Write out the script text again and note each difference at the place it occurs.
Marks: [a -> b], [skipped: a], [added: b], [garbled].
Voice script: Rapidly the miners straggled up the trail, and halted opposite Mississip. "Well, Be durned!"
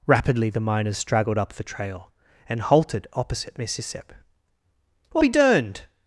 Rapidly the miners straggled up the trail, and halted opposite Mississip. "Well, Be durned!"